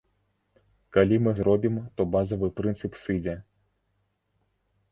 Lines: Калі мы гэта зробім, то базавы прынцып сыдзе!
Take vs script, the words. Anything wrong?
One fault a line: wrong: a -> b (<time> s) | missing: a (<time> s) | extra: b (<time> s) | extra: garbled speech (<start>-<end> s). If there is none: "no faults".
missing: гэта (1.3 s)